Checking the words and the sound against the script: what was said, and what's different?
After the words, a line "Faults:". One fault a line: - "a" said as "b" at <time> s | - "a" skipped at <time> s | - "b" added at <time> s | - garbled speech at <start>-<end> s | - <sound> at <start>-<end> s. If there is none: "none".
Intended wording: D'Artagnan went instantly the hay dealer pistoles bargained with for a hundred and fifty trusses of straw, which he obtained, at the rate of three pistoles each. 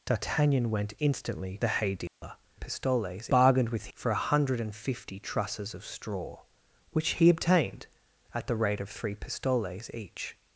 D'Artagnan went instantly the hay dealer pistoles bargained with for a hundred and fifty trusses of straw, which he obtained, at the rate of three pistoles each.
Faults:
- dropout at 2.1-2.2 s